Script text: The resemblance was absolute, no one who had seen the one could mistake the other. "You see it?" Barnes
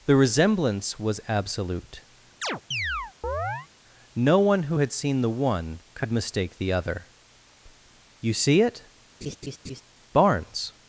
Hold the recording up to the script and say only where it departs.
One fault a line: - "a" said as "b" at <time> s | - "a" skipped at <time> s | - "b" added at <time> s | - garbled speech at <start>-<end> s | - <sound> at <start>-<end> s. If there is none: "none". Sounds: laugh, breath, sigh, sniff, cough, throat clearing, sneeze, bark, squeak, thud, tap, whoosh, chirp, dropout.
- chirp at 2.4-3.7 s
- laugh at 9.2-9.8 s